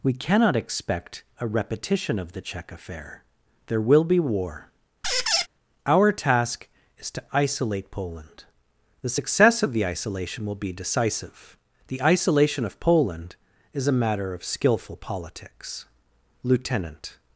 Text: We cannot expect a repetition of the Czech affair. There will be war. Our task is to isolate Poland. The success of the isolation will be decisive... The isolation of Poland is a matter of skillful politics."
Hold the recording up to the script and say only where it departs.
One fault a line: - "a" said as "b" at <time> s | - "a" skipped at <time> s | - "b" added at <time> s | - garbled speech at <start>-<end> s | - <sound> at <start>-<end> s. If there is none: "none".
- squeak at 5.0-5.5 s
- "Lieutenant" added at 16.4 s